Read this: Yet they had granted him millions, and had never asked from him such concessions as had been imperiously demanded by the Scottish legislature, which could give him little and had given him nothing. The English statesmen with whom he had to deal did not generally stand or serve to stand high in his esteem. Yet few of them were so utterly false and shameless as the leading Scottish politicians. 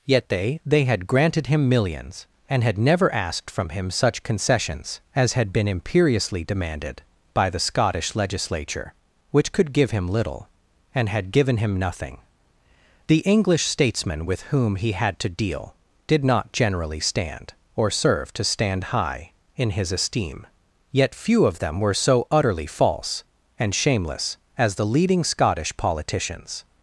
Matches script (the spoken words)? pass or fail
fail